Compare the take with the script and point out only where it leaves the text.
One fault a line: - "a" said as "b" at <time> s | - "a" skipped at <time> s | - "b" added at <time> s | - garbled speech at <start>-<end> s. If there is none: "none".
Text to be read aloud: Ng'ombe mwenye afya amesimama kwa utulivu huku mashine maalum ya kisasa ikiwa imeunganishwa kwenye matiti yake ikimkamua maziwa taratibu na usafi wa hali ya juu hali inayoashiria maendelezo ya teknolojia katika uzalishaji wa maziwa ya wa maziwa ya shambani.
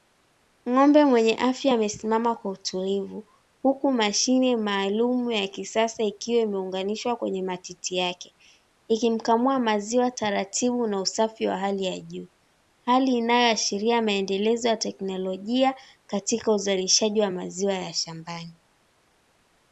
- "wa maziwa ya" skipped at 17.9 s